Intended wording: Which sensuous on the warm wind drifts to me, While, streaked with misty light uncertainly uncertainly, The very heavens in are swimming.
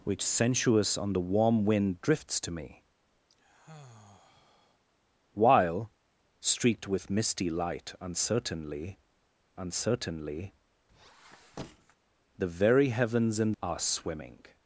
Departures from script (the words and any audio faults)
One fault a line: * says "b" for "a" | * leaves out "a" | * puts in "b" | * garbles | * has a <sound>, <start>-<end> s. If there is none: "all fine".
* has a sigh, 3.3-4.8 s
* has a squeak, 10.9-12.0 s